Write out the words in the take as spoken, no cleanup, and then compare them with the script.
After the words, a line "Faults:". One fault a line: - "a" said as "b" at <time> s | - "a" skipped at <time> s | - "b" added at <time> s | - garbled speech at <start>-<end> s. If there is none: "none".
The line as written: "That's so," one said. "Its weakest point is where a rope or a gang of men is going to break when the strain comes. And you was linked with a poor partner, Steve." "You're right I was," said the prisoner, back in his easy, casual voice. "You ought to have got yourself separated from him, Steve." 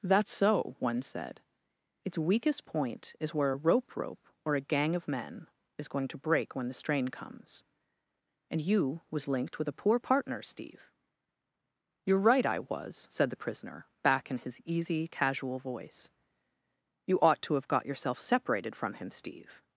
"That's so," one said. "Its weakest point is where a rope rope or a gang of men is going to break when the strain comes. And you was linked with a poor partner, Steve." "You're right I was," said the prisoner, back in his easy, casual voice. "You ought to have got yourself separated from him, Steve."
Faults:
- "rope" added at 4.0 s